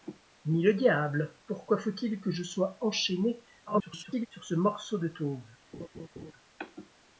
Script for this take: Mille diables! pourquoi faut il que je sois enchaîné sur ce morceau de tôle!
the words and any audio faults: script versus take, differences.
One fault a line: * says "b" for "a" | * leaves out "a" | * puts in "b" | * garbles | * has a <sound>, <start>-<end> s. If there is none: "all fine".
* garbles
* has a laugh, 5.7-6.3 s